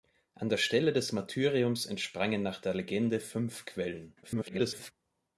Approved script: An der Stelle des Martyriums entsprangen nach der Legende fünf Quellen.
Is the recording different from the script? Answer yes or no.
yes